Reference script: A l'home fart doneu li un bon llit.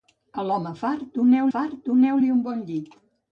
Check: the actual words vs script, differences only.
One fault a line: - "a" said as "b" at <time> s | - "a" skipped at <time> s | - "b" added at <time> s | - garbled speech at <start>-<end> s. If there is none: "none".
- "fart doneu" added at 1.5 s